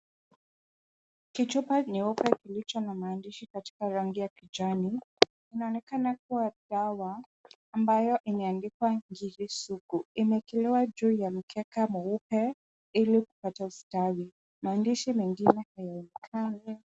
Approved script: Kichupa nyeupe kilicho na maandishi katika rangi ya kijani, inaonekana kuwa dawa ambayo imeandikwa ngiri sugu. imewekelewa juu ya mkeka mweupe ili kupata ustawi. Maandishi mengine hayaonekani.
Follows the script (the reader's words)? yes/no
yes